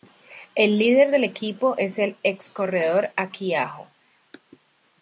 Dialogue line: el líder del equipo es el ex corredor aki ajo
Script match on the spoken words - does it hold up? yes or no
yes